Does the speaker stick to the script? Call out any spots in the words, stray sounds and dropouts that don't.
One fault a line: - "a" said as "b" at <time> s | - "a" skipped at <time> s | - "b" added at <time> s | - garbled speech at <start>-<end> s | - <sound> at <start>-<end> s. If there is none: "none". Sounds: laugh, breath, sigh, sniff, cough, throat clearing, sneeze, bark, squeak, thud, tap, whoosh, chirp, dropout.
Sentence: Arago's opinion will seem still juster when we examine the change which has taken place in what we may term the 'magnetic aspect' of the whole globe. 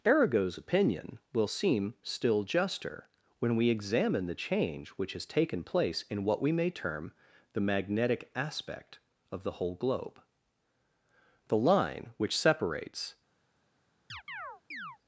- "The line which separates" added at 11.5 s
- chirp at 14.1-15.0 s